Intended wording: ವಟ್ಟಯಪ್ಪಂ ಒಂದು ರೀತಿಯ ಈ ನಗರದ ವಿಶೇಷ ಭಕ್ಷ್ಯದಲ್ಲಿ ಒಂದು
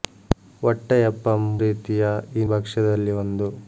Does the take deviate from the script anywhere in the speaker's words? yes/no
yes